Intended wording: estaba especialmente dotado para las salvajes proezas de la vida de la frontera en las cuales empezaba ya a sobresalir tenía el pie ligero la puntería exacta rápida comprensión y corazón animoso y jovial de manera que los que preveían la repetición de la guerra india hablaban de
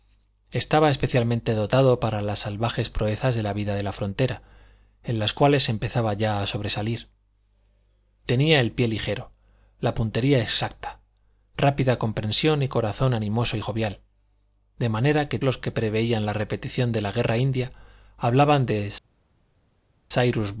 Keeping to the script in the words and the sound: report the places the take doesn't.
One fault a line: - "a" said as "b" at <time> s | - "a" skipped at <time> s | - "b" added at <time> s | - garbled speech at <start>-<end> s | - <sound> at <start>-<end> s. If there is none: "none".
none